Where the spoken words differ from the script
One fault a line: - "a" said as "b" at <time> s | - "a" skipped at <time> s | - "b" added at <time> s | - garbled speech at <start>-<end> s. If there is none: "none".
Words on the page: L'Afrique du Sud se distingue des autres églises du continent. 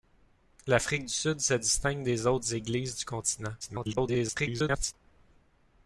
- garbled speech at 3.6-4.9 s